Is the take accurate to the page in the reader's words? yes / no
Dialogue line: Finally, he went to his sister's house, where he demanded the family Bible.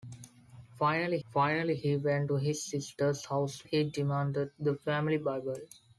no